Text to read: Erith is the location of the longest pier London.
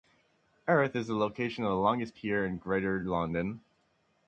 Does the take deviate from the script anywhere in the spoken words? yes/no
yes